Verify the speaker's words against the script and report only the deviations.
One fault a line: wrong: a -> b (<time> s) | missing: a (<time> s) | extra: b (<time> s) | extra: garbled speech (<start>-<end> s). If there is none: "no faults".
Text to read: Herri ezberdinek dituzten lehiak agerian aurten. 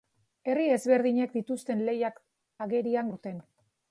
no faults